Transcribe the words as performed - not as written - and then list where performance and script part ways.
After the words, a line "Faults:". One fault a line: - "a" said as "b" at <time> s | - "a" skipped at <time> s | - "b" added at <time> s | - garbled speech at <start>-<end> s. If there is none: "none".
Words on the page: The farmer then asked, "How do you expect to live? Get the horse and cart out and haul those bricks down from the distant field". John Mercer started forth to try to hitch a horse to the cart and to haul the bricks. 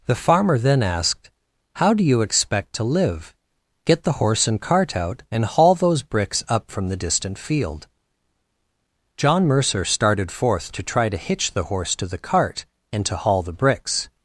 The farmer then asked, "How do you expect to live? Get the horse and cart out and haul those bricks up from the distant field". John Mercer started forth to try to hitch the horse to the cart and to haul the bricks.
Faults:
- "down" said as "up" at 6.5 s
- "a" said as "the" at 11.5 s